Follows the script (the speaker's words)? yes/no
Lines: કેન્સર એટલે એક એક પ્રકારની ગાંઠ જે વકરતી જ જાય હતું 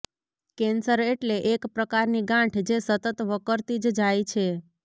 no